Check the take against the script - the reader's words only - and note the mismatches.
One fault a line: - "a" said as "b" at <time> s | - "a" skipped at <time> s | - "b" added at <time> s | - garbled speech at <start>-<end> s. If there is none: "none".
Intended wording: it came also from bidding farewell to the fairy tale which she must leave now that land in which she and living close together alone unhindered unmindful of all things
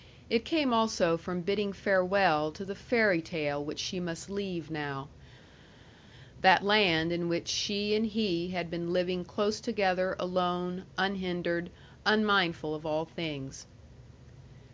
- "he had been" added at 8.0 s